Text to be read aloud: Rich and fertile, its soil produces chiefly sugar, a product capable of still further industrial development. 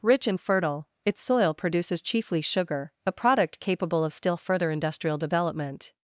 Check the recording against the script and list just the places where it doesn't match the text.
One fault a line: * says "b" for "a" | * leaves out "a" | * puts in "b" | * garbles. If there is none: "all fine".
all fine